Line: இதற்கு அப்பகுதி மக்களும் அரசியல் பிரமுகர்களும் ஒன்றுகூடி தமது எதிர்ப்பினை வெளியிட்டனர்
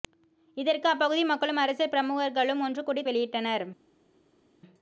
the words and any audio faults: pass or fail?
fail